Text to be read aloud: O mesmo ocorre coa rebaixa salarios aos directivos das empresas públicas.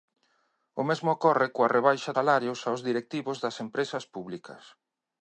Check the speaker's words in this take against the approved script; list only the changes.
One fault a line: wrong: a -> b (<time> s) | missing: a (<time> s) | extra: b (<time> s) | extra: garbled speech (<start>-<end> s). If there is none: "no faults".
no faults